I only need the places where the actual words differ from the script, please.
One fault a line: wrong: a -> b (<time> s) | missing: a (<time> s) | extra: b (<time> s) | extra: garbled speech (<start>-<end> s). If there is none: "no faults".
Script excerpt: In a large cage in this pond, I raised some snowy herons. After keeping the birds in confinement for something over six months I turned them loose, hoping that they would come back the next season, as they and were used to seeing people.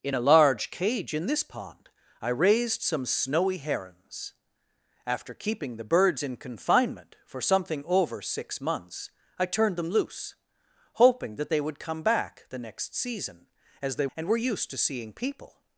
no faults